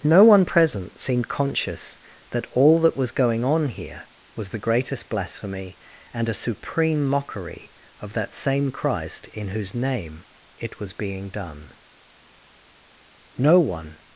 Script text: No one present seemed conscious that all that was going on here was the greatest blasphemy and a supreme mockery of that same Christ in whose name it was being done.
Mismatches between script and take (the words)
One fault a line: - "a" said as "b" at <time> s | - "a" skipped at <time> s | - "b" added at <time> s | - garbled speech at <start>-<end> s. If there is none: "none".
- "No one" added at 13.4 s